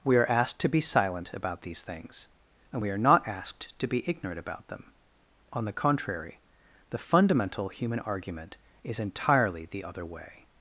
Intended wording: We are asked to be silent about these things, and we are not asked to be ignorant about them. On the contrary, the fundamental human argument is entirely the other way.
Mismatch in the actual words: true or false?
false